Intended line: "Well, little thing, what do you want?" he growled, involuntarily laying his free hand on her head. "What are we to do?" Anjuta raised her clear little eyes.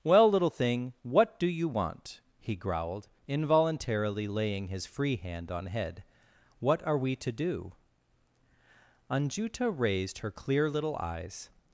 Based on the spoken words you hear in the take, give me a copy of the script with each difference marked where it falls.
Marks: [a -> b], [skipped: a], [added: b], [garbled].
"Well, little thing, what do you want?" he growled, involuntarily laying his free hand on [skipped: her] head. "What are we to do?" Anjuta raised her clear little eyes.